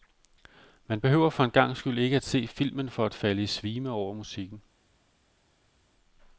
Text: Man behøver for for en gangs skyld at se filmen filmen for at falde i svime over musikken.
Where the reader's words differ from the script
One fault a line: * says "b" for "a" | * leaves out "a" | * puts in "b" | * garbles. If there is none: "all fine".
* leaves out "for"
* puts in "ikke"
* leaves out "filmen"